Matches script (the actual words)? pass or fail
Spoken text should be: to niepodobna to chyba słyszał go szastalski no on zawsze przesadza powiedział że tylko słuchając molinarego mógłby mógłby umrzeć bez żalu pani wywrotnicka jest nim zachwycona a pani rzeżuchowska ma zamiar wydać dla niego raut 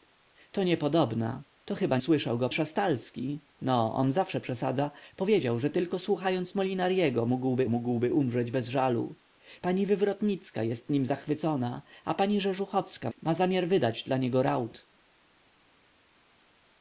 pass